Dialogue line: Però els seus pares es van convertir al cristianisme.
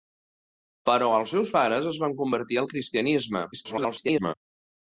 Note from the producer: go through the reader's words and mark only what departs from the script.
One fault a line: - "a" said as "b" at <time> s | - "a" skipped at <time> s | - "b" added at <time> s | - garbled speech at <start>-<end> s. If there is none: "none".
- garbled speech at 3.5-4.3 s